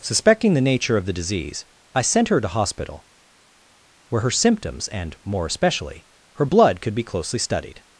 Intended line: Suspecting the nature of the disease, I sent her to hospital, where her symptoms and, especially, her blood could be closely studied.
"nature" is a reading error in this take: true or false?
false